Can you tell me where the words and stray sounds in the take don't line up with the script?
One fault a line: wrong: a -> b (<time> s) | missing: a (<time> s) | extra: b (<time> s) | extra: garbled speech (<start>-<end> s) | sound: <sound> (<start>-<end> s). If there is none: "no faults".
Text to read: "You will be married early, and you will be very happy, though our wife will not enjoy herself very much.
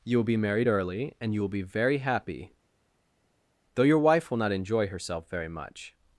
wrong: our -> your (3.8 s)